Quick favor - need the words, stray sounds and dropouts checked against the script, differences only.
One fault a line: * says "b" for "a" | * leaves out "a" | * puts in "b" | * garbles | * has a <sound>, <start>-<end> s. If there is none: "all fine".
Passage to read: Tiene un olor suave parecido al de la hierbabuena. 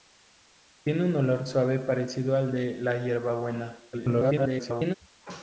* garbles